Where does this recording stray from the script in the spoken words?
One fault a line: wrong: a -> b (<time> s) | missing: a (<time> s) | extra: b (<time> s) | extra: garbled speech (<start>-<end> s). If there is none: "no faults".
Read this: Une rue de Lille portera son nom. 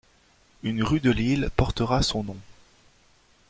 no faults